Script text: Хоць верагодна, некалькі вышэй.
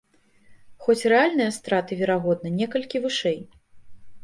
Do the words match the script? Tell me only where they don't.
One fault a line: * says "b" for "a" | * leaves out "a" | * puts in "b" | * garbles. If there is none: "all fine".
* puts in "рэальныя страты"